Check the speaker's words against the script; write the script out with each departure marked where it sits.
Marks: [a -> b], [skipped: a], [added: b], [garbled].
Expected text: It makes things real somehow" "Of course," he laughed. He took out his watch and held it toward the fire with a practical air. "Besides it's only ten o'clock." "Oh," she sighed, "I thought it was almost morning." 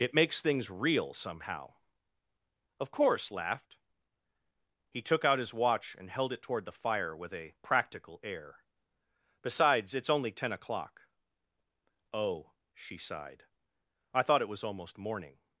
It makes things real somehow" "Of course," [skipped: he] laughed. He took out his watch and held it toward the fire with a practical air. "Besides it's only ten o'clock." "Oh," she sighed, "I thought it was almost morning."